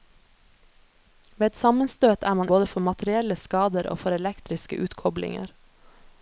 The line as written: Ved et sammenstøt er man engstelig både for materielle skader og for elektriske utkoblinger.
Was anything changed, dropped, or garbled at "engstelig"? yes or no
yes